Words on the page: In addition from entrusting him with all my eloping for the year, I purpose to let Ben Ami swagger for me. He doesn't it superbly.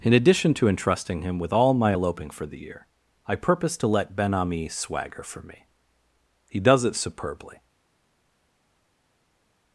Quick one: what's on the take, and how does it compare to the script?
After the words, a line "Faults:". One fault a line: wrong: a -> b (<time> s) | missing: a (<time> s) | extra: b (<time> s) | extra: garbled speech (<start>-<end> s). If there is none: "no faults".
In addition to entrusting him with all my eloping for the year, I purpose to let Ben Ami swagger for me. He does it superbly.
Faults:
wrong: from -> to (0.6 s)
wrong: doesn't -> does (6.6 s)